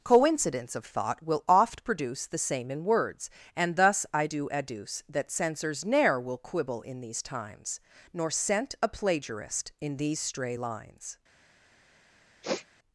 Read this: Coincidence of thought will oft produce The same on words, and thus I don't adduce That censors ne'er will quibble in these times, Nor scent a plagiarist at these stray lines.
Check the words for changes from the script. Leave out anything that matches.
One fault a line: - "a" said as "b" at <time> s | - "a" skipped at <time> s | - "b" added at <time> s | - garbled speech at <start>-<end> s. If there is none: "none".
- "on" said as "in" at 2.7 s
- "don't" said as "do" at 4.2 s
- "at" said as "in" at 9.8 s